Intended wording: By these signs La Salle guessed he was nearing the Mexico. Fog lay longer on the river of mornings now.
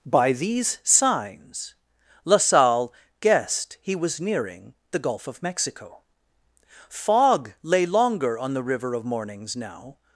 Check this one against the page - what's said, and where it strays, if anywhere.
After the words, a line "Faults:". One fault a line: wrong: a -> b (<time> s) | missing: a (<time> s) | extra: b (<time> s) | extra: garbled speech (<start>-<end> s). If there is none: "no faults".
By these signs La Salle guessed he was nearing the Gulf of Mexico. Fog lay longer on the river of mornings now.
Faults:
extra: Gulf of (5.0 s)